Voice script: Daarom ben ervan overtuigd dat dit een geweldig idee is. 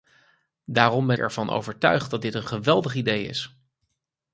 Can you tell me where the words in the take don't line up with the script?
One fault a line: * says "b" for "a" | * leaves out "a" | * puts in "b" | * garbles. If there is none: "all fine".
all fine